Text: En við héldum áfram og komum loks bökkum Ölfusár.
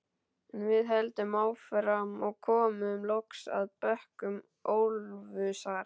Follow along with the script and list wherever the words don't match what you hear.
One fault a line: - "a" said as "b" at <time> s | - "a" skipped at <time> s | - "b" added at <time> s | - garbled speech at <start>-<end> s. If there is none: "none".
- "að" added at 3.6 s